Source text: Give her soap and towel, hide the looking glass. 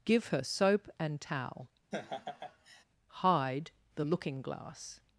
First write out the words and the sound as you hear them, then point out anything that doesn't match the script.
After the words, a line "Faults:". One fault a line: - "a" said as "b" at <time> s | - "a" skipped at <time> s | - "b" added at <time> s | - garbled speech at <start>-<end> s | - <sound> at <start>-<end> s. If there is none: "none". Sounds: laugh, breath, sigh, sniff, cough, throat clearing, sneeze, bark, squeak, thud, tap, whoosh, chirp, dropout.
Give her soap and towel, hide the looking glass.
Faults:
- laugh at 1.9-2.8 s